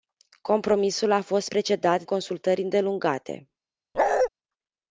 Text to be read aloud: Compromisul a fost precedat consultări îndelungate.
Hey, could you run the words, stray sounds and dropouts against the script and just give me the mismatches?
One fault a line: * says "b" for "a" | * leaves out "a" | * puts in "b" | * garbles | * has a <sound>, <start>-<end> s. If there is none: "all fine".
* has a bark, 3.9-4.3 s